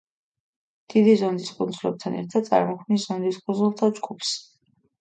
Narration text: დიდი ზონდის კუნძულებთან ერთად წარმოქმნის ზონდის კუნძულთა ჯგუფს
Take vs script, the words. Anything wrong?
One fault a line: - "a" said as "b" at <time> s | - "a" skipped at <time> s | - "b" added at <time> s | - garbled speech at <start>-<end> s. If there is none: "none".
none